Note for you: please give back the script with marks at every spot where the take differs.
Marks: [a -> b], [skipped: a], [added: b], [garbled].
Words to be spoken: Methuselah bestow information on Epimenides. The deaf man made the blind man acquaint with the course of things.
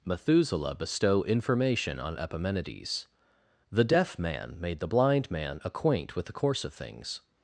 Methuselah bestow information on Epimenides. The deaf man made the blind man acquaint with the course of things.